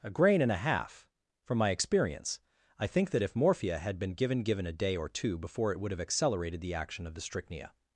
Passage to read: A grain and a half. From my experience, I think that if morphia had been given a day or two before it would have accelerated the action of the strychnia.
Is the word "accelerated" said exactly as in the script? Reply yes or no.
yes